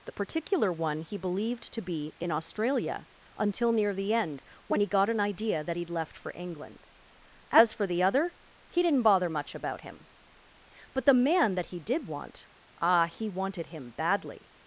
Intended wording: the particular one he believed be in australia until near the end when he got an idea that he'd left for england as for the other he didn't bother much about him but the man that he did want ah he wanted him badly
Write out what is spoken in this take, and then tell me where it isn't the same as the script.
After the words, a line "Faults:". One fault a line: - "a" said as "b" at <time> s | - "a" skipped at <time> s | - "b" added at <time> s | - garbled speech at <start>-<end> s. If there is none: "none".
the particular one he believed to be in australia until near the end when he got an idea that he'd left for england as for the other he didn't bother much about him but the man that he did want ah he wanted him badly
Faults:
- "to" added at 1.7 s